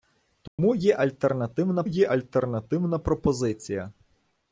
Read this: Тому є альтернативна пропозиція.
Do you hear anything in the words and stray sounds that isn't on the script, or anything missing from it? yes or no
yes